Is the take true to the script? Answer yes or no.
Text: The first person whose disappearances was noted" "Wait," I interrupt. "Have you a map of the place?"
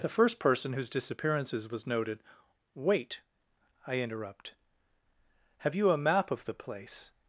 yes